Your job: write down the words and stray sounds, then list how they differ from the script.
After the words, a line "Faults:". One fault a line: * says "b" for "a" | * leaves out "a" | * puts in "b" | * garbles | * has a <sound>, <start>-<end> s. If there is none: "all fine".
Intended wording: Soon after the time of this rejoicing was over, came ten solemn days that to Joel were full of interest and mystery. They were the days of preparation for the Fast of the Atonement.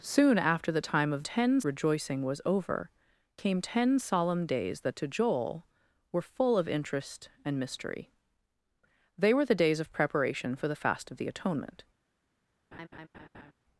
Soon after the time of ten rejoicing was over, came ten solemn days that to Joel were full of interest and mystery. They were the days of preparation for the Fast of the Atonement.
Faults:
* says "ten" for "this"
* has a laugh, 12.7-13.5 s